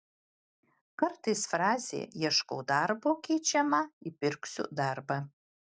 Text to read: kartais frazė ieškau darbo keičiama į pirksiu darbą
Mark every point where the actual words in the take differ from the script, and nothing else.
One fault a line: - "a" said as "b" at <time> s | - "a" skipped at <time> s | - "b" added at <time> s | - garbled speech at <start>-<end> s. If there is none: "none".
none